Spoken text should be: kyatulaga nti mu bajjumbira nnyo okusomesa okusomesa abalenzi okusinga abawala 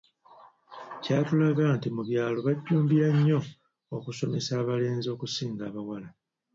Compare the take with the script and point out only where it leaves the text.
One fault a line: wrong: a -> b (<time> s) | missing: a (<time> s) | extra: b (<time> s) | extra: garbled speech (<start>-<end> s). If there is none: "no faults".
extra: byalo (2.1 s)
missing: okusomesa (4.5 s)